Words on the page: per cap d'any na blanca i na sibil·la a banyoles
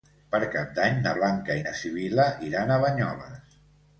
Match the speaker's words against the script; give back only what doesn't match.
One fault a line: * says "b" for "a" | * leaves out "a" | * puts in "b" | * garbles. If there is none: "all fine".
* puts in "iran"